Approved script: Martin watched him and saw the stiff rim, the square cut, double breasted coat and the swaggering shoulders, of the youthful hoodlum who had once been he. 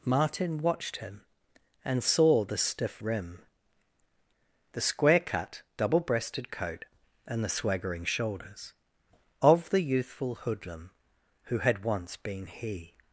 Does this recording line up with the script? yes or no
yes